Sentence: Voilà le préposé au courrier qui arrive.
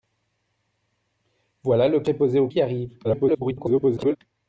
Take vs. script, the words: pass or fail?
fail